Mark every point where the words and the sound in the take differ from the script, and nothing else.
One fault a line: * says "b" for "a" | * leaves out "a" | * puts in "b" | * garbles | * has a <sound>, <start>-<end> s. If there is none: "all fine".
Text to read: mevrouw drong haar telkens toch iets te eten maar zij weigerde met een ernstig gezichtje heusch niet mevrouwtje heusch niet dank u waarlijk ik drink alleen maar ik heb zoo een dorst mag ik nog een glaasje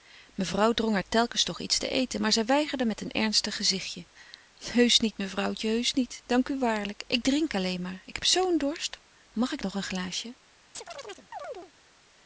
* has a chirp, 10.7-11.7 s